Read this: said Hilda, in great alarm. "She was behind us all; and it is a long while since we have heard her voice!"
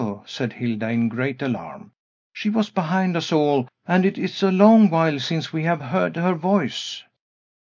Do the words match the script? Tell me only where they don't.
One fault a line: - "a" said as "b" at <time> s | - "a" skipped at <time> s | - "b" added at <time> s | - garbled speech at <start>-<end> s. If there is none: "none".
none